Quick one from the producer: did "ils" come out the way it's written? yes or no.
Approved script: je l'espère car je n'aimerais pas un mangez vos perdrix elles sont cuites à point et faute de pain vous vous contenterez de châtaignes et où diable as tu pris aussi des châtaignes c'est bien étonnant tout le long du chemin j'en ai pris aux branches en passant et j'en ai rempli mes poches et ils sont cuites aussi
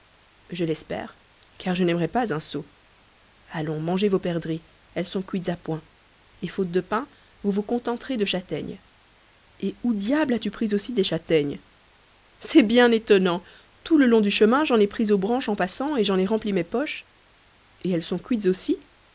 no